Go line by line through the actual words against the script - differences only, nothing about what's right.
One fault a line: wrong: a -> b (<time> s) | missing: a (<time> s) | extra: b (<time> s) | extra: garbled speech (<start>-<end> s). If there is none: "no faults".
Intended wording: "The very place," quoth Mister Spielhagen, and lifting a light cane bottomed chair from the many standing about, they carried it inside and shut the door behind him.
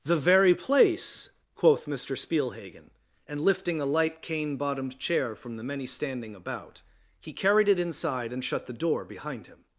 wrong: they -> he (7.2 s)